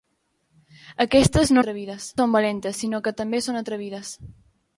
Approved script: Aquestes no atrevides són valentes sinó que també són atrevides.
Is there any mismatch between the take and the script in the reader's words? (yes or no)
no